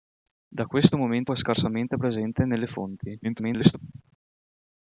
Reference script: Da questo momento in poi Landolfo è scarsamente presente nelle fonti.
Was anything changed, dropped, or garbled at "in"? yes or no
yes